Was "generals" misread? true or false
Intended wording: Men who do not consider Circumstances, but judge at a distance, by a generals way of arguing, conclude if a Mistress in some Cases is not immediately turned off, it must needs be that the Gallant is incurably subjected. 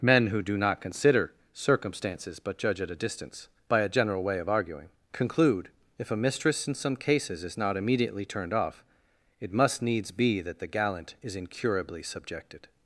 true